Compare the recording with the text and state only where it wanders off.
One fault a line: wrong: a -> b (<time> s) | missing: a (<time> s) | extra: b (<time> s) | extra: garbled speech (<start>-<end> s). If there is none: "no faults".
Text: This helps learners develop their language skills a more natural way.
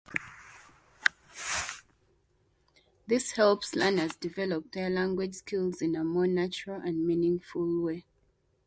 extra: in (5.8 s)
extra: and meaningful (6.8 s)